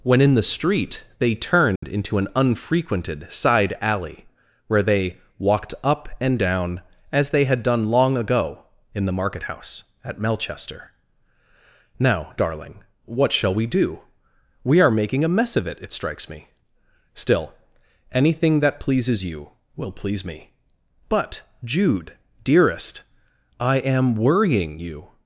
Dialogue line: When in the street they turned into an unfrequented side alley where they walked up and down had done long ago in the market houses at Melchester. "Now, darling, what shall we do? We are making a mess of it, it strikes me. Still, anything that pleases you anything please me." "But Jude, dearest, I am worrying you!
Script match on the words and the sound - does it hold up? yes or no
no